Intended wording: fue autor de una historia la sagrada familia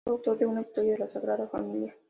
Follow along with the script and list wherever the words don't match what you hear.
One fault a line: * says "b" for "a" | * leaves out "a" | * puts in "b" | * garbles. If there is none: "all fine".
all fine